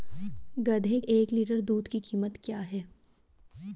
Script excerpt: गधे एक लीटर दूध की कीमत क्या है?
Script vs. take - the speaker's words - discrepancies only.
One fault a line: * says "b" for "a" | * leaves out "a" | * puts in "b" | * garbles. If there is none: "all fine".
all fine